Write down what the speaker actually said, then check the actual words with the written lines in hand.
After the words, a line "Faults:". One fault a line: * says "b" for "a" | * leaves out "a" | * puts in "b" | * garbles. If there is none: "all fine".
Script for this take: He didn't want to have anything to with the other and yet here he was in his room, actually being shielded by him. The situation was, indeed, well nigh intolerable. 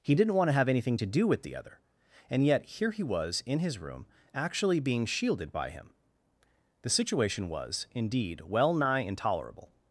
He didn't want to have anything to do with the other and yet here he was in his room, actually being shielded by him. The situation was, indeed, well nigh intolerable.
Faults:
* puts in "do"